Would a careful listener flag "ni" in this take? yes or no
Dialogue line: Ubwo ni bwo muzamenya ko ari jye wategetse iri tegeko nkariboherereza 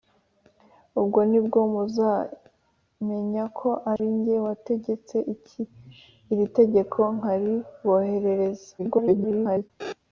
no